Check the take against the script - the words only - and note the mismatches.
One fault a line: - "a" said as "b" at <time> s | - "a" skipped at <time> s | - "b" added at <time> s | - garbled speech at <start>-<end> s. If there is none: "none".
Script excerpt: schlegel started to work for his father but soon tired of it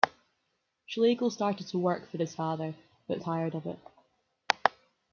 - "soon" skipped at 3.2 s